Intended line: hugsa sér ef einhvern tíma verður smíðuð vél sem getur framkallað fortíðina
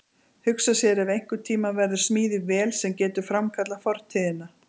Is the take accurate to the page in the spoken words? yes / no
yes